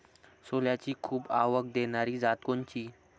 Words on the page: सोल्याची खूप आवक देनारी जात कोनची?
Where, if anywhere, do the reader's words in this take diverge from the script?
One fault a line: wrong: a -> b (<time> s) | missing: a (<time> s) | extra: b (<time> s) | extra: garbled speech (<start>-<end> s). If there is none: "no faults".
no faults